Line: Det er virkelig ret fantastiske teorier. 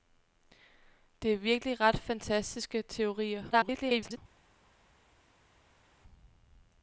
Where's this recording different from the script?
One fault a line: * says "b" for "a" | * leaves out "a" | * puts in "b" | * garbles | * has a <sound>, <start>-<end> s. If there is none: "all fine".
* garbles